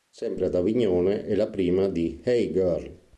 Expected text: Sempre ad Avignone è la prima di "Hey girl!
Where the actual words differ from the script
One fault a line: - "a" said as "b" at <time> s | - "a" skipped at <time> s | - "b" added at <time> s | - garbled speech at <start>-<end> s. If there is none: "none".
none